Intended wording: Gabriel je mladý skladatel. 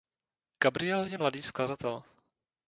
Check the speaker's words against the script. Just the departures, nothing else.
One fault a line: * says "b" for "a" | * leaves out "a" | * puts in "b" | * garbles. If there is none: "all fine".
all fine